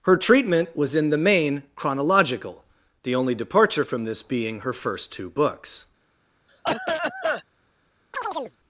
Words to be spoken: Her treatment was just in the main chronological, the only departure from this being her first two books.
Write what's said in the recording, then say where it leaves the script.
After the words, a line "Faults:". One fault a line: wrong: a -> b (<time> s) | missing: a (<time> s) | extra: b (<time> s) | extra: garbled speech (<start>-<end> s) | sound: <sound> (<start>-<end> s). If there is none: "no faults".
Her treatment was in the main chronological, the only departure from this being her first two books.
Faults:
missing: just (0.9 s)
sound: cough (6.5-7.4 s)
sound: chirp (8.1-8.6 s)